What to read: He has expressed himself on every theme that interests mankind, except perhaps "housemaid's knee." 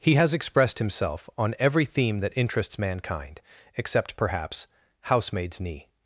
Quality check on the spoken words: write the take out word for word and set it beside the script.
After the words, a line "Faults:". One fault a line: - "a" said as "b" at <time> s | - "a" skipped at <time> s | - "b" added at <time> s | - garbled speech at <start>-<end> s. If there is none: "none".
He has expressed himself on every theme that interests mankind, except perhaps "housemaid's knee."
Faults:
none